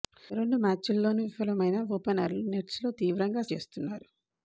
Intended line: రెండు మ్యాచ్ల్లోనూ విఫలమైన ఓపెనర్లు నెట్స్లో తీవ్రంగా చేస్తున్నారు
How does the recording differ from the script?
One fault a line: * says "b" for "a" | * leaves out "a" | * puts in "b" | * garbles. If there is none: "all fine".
all fine